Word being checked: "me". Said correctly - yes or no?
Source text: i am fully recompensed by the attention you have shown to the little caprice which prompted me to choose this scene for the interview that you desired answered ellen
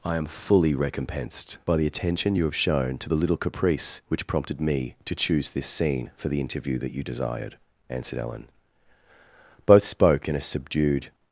yes